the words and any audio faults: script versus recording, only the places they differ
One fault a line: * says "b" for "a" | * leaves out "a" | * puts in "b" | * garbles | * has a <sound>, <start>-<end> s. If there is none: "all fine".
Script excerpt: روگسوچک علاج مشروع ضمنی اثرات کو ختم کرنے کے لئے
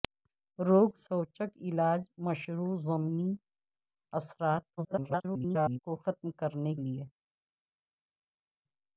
* garbles
* leaves out "کے"